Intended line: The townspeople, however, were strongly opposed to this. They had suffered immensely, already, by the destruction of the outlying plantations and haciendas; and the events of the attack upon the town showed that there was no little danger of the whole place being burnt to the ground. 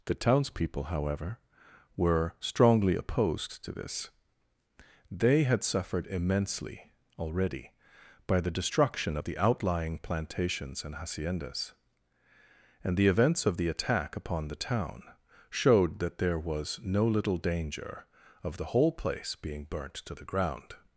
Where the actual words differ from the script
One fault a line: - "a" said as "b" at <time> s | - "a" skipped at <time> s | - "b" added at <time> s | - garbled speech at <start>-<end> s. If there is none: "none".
none